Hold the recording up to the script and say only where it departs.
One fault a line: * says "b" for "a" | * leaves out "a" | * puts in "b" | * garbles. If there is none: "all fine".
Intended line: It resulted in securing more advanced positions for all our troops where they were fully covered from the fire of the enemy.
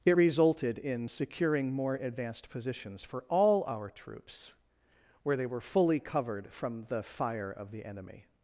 all fine